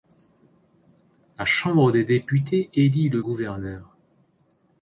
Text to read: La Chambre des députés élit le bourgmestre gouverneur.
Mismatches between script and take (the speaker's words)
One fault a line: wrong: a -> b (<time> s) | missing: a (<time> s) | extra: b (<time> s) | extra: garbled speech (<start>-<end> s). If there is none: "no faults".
missing: bourgmestre (3.2 s)